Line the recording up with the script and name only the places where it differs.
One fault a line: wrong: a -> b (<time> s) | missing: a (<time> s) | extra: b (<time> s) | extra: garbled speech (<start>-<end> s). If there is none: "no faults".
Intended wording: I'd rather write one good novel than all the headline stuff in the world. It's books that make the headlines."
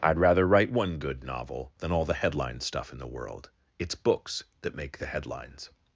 no faults